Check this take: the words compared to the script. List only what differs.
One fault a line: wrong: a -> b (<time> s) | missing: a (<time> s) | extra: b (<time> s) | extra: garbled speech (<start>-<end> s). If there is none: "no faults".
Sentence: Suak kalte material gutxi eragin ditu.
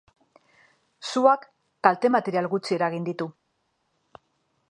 no faults